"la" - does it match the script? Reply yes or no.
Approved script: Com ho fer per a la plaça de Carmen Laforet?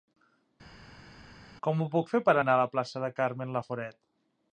yes